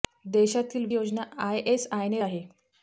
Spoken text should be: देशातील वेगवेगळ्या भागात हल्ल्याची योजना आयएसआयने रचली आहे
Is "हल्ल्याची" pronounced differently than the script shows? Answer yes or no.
yes